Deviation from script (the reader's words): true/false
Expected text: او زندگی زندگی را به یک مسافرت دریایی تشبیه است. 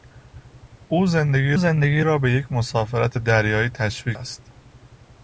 false